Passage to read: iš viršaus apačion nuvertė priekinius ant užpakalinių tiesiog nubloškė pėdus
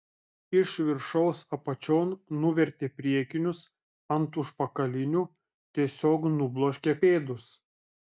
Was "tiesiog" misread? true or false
false